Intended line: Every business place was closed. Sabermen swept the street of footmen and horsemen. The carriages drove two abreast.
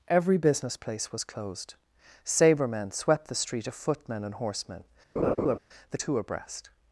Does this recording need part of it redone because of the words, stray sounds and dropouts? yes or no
yes